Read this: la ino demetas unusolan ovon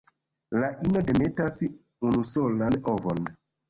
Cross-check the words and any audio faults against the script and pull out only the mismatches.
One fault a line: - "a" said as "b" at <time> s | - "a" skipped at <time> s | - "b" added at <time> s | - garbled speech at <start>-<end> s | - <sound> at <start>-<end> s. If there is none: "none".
none